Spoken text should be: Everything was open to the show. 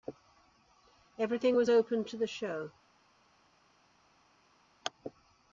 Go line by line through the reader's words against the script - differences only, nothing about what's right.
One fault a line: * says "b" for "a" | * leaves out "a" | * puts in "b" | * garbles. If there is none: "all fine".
all fine